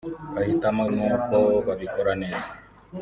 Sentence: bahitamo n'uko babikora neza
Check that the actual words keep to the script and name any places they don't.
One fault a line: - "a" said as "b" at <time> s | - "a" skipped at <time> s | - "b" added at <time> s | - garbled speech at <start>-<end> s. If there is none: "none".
none